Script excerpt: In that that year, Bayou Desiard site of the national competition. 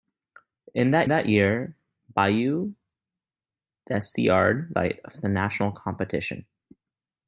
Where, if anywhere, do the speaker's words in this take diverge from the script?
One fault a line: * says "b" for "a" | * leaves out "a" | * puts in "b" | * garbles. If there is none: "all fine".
all fine